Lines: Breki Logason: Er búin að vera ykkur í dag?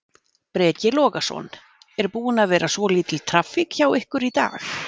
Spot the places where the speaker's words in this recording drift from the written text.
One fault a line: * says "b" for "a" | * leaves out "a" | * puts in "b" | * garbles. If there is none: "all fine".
* puts in "svolítil traffík hjá"